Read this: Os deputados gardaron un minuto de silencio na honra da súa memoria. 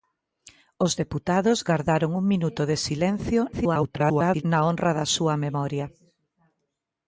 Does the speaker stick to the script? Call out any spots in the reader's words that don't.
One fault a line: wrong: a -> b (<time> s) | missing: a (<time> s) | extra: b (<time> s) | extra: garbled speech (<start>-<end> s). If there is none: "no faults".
extra: garbled speech (3.5-4.4 s)